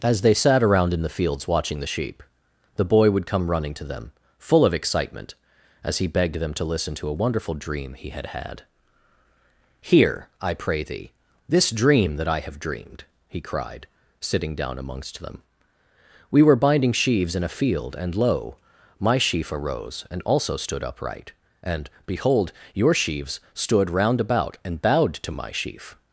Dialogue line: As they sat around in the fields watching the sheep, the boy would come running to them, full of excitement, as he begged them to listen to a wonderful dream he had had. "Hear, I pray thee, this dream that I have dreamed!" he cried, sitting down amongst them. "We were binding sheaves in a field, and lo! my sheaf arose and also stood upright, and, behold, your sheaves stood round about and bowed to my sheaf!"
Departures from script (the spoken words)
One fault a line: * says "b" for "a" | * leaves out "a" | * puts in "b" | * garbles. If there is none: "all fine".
all fine